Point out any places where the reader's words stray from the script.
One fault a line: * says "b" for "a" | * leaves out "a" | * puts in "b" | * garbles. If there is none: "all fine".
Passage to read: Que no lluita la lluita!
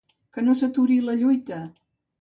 * says "s'aturi" for "lluita"